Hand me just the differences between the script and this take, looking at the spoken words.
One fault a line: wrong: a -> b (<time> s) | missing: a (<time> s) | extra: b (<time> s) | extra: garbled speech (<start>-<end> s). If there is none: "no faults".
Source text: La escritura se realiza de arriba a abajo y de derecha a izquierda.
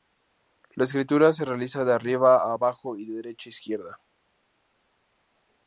no faults